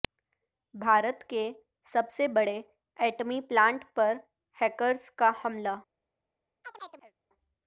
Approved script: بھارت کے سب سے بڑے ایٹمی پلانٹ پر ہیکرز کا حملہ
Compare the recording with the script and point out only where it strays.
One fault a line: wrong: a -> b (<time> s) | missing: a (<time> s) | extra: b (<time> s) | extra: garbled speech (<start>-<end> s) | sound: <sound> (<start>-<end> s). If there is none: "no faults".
sound: chirp (6.6-7.1 s)